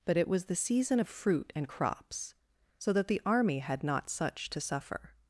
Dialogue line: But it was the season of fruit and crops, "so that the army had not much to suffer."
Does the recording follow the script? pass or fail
fail